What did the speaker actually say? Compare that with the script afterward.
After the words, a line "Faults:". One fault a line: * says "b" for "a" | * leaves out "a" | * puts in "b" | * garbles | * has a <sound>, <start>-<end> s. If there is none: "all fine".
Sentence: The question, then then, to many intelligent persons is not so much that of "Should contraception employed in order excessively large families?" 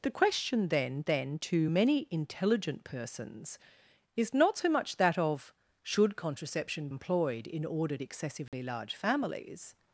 The question, then then, to many intelligent persons is not so much that of "Should contraception employed in order excessively large families?"
Faults:
* has a dropout, 8.5-8.5 s